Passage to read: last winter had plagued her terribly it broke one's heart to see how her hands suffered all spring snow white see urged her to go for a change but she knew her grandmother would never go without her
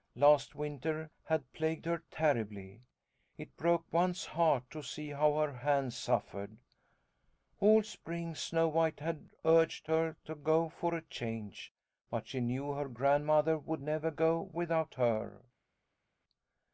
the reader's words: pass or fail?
fail